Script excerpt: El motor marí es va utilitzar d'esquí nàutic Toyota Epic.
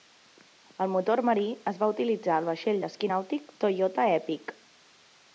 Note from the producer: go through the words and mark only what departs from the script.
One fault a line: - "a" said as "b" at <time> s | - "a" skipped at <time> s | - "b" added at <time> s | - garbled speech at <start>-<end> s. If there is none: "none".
- "al vaixell" added at 2.4 s